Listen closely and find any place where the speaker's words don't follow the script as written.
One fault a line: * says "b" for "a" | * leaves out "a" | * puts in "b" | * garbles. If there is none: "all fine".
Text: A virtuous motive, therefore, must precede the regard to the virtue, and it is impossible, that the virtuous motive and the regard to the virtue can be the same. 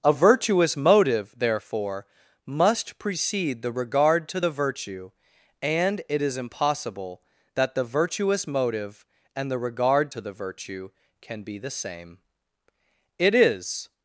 * puts in "It is"